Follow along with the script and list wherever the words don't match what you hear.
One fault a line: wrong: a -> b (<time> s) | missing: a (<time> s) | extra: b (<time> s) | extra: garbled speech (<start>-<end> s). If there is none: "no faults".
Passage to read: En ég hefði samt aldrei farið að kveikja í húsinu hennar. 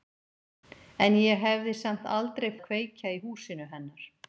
missing: farið (2.5 s)